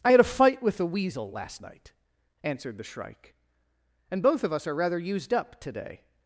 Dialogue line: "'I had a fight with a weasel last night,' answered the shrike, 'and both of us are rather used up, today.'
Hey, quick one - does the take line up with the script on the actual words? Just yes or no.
yes